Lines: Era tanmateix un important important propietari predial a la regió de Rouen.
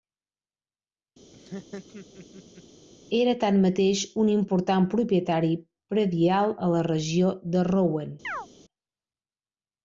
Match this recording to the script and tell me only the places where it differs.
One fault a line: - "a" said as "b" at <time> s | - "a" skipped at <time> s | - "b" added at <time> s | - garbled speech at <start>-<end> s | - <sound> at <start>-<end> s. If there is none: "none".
- laugh at 1.3-2.6 s
- "important" skipped at 4.9 s
- chirp at 8.2-8.5 s